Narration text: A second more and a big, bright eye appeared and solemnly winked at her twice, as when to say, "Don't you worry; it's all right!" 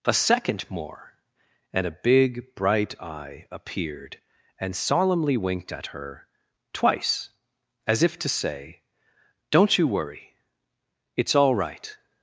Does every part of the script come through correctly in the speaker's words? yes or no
no